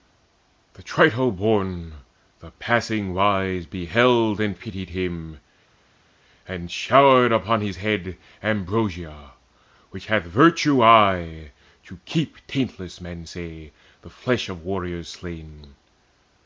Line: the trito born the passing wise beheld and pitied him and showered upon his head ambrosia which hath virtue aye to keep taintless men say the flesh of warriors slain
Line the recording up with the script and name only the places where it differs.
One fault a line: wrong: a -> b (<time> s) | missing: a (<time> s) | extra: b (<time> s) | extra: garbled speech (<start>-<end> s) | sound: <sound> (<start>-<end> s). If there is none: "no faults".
no faults